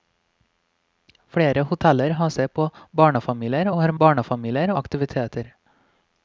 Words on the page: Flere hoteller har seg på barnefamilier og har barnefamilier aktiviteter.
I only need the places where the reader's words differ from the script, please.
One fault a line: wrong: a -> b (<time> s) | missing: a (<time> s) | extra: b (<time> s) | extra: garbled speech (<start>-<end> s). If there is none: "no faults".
no faults